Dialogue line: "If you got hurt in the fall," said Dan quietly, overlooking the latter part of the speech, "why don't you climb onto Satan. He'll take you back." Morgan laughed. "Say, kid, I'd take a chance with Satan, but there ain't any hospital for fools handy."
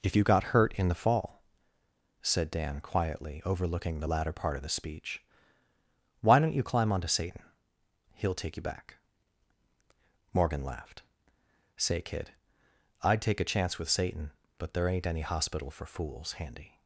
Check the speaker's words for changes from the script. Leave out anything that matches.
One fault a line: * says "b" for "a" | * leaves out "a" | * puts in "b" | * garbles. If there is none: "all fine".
all fine